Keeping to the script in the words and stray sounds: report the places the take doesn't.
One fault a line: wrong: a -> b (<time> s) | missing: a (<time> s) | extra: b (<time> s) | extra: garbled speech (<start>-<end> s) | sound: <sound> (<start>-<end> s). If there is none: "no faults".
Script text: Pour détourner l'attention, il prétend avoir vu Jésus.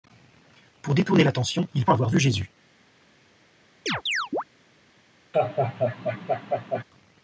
missing: prétend (1.9 s)
sound: chirp (3.9-4.4 s)
sound: laugh (5.3-6.8 s)